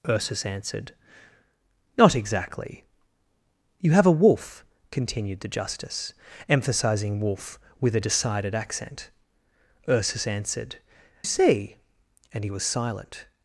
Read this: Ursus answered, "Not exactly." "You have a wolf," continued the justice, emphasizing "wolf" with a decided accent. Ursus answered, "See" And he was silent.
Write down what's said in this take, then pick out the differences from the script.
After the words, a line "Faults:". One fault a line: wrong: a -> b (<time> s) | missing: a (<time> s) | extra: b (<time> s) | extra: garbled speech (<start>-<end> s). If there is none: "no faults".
Ursus answered, "Not exactly." "You have a wolf," continued the justice, emphasizing "wolf" with a decided accent. Ursus answered, "See" And he was silent.
Faults:
no faults